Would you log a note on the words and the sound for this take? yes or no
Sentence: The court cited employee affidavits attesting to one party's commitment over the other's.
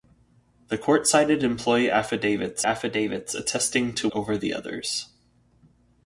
yes